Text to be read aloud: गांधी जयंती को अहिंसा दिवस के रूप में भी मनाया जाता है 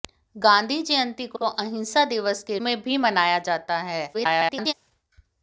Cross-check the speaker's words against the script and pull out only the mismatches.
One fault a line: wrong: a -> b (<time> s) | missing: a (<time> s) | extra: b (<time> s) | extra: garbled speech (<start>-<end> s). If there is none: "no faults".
extra: को (1.3 s)
missing: रूप (2.6 s)
extra: garbled speech (4.1-4.7 s)